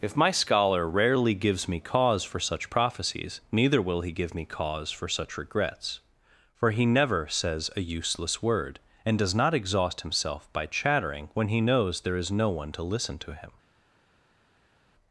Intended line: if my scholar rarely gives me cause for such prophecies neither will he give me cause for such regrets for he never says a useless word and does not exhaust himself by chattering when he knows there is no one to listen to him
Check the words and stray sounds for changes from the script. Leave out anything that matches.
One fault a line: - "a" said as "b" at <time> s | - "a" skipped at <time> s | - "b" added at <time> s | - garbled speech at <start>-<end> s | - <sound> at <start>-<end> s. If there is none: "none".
none